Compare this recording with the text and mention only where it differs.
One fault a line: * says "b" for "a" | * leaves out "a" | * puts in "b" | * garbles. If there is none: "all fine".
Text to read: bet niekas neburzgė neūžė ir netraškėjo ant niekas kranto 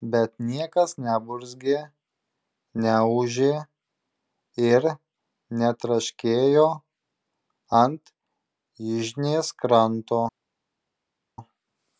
* says "yžnės" for "niekas"